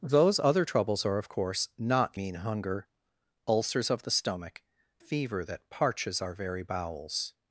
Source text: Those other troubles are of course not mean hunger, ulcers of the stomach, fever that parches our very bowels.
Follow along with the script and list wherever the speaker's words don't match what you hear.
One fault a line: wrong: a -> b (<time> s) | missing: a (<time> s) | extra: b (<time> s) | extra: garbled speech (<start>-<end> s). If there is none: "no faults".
no faults